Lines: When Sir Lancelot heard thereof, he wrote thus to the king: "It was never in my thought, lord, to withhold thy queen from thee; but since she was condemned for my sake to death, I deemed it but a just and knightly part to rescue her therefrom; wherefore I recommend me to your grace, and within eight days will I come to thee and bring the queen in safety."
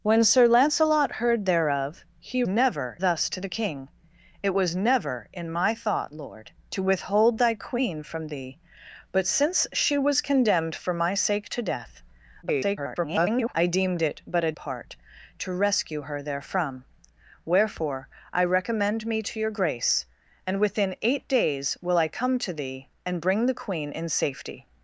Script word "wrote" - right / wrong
wrong